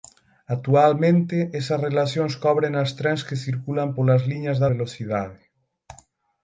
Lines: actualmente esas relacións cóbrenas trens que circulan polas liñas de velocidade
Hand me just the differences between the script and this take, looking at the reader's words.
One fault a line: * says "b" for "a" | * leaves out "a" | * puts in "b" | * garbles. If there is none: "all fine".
all fine